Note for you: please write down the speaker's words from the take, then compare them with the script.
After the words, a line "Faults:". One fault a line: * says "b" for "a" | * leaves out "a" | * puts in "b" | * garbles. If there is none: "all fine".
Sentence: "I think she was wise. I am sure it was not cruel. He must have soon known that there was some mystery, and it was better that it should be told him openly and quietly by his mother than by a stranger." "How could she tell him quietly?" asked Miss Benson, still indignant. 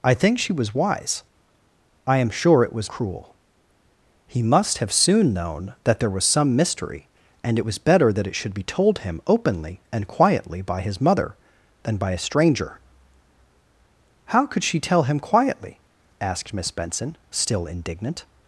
"I think she was wise. I am sure it was cruel. He must have soon known that there was some mystery, and it was better that it should be told him openly and quietly by his mother than by a stranger." "How could she tell him quietly?" asked Miss Benson, still indignant.
Faults:
* leaves out "not"